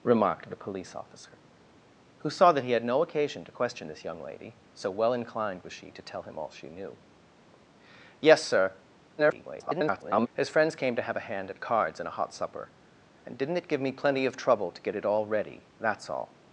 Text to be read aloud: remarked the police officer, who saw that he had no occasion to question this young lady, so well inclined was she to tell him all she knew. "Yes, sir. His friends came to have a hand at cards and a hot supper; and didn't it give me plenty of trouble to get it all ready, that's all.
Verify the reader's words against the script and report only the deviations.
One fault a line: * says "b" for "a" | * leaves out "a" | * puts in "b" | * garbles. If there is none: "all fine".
* garbles